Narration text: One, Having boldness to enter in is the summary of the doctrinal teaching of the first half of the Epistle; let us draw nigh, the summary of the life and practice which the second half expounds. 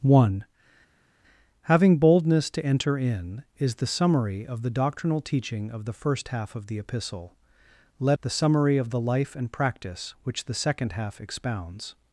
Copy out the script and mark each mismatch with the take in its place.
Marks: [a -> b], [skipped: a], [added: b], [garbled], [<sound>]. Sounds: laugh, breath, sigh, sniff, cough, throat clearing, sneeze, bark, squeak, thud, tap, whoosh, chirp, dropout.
One, Having boldness to enter in is the summary of the doctrinal teaching of the first half of the Epistle; let [skipped: us draw nigh,] the summary of the life and practice which the second half expounds.